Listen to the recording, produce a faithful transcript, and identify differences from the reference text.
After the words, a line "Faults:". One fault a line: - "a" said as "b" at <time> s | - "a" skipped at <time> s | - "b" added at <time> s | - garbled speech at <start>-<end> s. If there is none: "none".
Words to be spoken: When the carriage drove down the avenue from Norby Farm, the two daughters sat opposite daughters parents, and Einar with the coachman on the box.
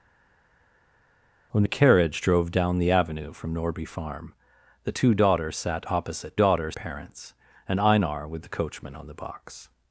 When the carriage drove down the avenue from Norby Farm, the two daughters sat opposite daughters parents, and Einar with the coachman on the box.
Faults:
none